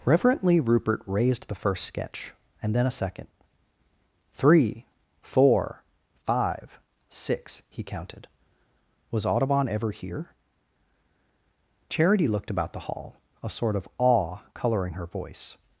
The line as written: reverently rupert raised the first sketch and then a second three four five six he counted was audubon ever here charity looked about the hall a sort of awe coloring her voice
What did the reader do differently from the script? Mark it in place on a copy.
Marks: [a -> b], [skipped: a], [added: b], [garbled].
reverently rupert raised the first sketch and then a second three four five six he counted was audubon ever here charity looked about the hall a sort of awe coloring her voice